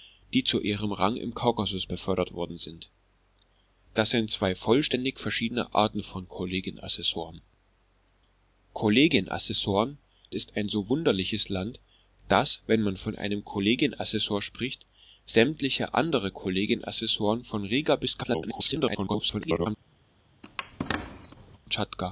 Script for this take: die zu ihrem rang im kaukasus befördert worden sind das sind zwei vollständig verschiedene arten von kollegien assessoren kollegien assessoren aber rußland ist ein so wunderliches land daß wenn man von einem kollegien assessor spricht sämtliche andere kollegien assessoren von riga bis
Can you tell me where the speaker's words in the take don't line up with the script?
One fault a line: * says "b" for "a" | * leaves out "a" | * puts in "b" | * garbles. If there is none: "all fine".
* leaves out "aber rußland"
* garbles